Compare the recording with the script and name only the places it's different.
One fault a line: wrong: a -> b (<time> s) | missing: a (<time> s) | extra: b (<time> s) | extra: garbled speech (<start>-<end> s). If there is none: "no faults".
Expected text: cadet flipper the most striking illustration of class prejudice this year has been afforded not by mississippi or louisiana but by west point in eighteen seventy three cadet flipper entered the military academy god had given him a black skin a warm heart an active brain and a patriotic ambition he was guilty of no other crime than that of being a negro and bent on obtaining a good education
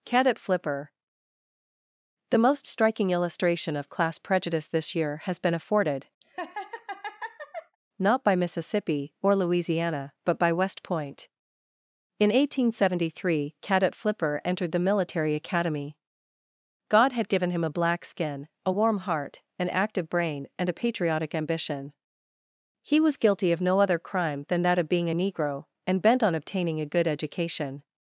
no faults